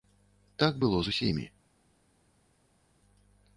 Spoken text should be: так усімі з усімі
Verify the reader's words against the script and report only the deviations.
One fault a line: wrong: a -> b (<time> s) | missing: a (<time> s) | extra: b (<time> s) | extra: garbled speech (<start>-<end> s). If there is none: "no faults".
wrong: усімі -> было (0.8 s)